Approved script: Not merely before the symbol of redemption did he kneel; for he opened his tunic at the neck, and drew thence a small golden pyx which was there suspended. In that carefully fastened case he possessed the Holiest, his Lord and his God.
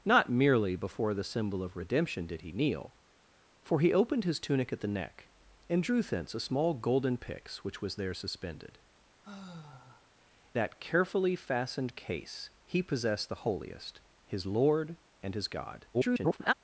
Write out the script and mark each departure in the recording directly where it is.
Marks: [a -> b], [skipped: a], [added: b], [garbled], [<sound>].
Not merely before the symbol of redemption did he kneel; for he opened his tunic at the neck, and drew thence a small golden pyx which was there suspended. [skipped: In] [sigh] that carefully fastened case he possessed the Holiest, his Lord and his God. [garbled]